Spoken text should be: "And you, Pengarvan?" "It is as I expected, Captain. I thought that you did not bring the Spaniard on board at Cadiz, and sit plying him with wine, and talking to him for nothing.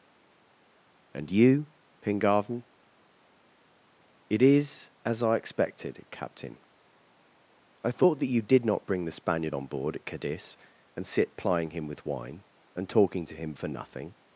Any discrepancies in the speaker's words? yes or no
no